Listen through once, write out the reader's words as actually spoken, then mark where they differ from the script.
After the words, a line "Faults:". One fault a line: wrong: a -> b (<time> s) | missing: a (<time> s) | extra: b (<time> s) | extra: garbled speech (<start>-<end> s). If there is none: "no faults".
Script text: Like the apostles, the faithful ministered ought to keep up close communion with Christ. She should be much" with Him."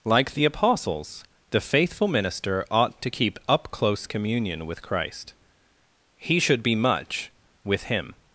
Like the apostles, the faithful minister ought to keep up close communion with Christ. He should be much" with Him."
Faults:
wrong: ministered -> minister (2.1 s)
wrong: She -> He (6.2 s)